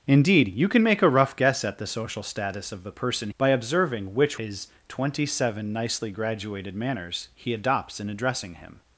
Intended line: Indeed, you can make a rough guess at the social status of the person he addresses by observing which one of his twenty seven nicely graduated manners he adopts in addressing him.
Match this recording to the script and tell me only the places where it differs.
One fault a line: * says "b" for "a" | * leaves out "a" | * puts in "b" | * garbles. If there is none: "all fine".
* leaves out "he addresses"
* leaves out "one of"